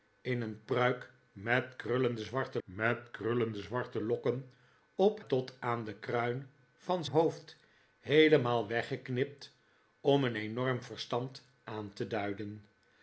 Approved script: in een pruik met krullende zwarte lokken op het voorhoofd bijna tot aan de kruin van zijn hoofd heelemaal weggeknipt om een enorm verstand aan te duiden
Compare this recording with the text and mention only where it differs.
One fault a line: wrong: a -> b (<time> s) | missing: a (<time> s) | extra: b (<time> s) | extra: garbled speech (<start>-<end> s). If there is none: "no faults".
wrong: lokken op het voorhoofd bijna -> met krullende zwarte lokken op (2.6 s)
missing: zijn (7.0 s)